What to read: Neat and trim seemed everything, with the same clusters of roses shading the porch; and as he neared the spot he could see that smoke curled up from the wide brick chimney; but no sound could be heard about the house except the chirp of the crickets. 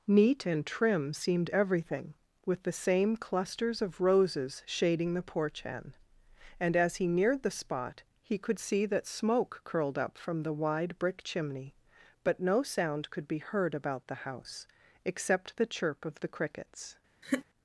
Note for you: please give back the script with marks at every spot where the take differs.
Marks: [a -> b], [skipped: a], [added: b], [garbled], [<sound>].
Neat and trim seemed everything, with the same clusters of roses shading the porch; [added: hen] and as he neared the spot he could see that smoke curled up from the wide brick chimney; but no sound could be heard about the house except the chirp of the crickets. [laugh]